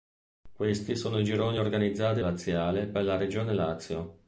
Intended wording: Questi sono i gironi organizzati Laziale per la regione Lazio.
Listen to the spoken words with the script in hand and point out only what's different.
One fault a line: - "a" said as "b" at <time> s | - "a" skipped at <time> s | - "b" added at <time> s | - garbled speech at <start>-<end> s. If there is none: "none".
none